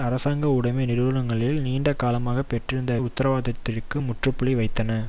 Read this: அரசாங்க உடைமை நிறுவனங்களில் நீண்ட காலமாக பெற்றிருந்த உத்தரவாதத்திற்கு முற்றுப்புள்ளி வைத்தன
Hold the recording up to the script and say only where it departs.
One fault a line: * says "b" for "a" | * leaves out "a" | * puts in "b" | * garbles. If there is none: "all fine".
all fine